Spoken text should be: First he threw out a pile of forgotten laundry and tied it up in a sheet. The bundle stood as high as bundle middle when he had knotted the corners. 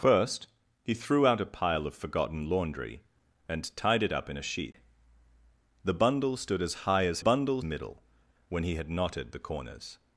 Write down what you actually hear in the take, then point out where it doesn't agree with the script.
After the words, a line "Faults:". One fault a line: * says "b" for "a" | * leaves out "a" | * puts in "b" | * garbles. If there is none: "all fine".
First he threw out a pile of forgotten laundry and tied it up in a sheet. The bundle stood as high as bundle middle when he had knotted the corners.
Faults:
all fine